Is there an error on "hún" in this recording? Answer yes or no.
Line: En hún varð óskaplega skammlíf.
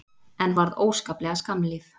yes